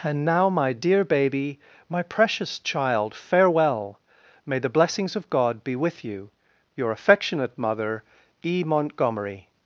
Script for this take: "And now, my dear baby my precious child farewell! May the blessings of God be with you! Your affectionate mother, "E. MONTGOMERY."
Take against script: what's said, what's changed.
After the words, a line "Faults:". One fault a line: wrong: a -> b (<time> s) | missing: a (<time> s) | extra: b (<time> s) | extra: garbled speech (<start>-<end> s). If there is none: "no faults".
"And now, my dear baby my precious child farewell! May the blessings of God be with you! Your affectionate mother, "E. MONTGOMERY."
Faults:
no faults